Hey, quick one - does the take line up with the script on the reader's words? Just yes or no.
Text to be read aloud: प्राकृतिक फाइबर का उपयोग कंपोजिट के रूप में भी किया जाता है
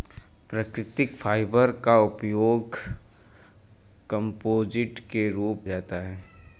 no